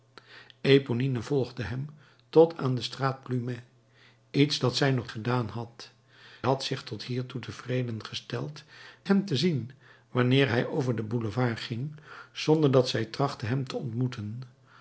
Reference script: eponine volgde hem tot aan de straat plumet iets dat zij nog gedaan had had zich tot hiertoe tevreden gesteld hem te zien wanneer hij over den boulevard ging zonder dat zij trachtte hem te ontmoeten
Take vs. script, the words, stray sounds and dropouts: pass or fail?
pass